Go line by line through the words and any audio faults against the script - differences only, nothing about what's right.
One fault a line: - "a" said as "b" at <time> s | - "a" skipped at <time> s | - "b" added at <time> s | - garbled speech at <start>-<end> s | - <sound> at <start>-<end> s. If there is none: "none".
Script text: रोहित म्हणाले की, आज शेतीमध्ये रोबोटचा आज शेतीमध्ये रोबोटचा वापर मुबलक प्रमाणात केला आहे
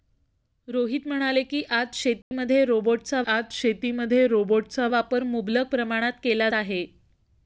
- dropout at 2.2-2.3 s